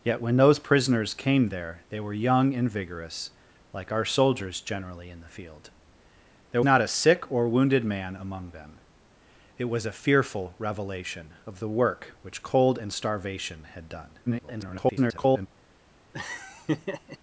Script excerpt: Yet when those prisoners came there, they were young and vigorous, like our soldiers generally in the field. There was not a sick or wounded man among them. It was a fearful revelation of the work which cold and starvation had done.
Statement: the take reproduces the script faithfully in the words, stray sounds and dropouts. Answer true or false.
false